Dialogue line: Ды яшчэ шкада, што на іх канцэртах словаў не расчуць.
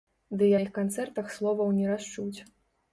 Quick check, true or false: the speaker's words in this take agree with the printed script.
false